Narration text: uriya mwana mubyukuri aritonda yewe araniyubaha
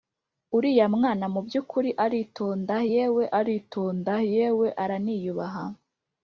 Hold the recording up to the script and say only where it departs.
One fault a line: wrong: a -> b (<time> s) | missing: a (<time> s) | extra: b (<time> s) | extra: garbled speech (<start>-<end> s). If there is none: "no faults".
extra: aritonda yewe (3.4 s)